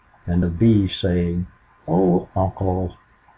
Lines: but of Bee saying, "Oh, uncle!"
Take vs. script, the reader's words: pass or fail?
fail